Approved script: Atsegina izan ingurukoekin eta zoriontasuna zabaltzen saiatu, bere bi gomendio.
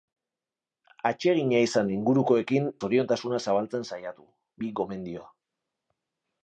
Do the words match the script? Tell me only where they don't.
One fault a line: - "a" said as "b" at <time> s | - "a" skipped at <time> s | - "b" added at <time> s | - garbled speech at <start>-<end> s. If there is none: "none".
- "eta" skipped at 2.7 s
- "bere" skipped at 4.3 s